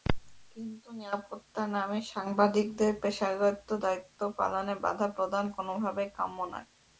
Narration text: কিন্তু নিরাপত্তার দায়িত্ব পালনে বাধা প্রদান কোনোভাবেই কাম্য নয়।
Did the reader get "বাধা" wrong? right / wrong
right